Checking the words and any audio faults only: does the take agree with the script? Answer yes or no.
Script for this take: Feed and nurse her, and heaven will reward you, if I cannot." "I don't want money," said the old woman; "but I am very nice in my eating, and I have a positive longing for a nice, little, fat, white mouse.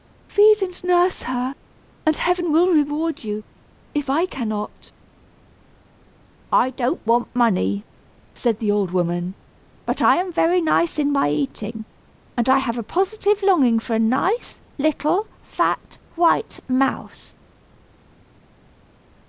yes